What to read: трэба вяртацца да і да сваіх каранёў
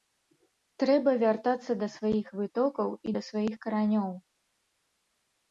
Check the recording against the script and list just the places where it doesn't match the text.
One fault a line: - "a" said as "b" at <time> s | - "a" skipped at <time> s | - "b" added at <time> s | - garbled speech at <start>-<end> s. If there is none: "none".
- "сваіх вытокаў" added at 2.0 s